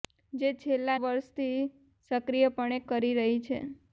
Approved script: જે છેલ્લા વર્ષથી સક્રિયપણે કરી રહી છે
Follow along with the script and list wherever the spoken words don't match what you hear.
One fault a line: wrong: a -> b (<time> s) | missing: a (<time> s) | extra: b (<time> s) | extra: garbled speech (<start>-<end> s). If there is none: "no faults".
no faults